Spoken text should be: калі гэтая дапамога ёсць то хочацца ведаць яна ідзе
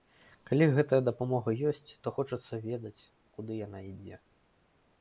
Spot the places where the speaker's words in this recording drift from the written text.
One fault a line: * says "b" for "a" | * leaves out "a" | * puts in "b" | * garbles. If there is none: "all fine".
* puts in "куды"